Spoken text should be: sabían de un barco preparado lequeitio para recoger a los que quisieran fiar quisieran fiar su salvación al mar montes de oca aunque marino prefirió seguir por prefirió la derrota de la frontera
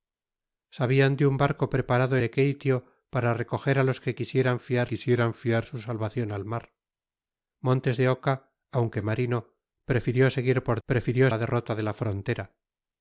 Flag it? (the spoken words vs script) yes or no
no